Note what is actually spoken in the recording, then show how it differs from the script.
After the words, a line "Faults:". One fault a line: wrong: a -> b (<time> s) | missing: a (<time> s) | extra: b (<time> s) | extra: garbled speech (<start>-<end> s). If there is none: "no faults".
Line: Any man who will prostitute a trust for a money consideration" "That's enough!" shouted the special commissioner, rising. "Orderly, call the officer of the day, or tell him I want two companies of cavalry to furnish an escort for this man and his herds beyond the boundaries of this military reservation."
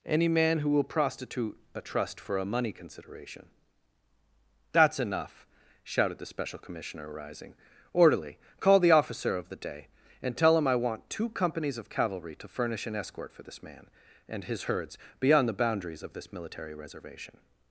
Any man who will prostitute a trust for a money consideration" "That's enough!" shouted the special commissioner, rising. "Orderly, call the officer of the day, and tell him I want two companies of cavalry to furnish an escort for this man and his herds beyond the boundaries of this military reservation."
Faults:
wrong: or -> and (10.2 s)